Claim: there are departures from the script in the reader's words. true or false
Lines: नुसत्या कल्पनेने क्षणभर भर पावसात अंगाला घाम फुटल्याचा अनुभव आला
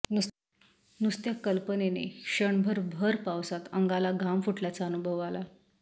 false